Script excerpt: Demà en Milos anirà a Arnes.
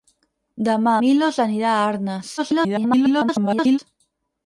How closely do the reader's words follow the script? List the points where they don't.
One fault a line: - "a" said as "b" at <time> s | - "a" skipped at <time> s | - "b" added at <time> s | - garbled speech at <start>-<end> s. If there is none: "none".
- "en" skipped at 0.9 s
- garbled speech at 2.4-3.8 s